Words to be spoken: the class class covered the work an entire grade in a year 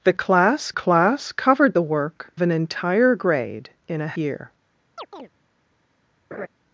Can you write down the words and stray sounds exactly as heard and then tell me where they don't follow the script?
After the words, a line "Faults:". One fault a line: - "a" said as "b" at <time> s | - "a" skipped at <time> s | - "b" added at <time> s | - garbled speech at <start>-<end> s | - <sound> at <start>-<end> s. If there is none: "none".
the class class covered the work an entire grade in a year
Faults:
- chirp at 5.0-5.3 s
- laugh at 6.3-6.5 s